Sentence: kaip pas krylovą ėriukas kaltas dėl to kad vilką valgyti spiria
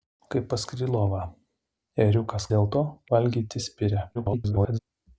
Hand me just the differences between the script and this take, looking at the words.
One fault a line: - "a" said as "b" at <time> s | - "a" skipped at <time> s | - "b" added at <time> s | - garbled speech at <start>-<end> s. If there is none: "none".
- "kaltas" skipped at 2.5 s
- "kad vilką" skipped at 2.8 s
- garbled speech at 4.1-4.8 s